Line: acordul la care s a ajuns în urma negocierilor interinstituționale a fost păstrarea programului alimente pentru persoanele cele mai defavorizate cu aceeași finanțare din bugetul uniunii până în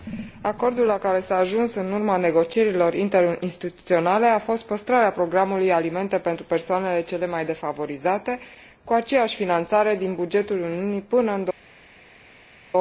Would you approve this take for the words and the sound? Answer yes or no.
yes